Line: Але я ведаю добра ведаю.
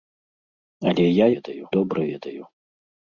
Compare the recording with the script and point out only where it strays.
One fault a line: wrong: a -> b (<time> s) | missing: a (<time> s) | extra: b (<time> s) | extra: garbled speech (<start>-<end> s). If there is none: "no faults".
no faults